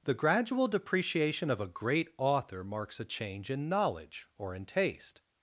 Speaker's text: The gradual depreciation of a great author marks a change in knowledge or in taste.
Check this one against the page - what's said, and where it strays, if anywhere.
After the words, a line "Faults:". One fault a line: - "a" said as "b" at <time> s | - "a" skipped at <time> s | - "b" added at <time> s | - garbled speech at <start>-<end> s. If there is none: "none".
The gradual depreciation of a great author marks a change in knowledge or in taste.
Faults:
none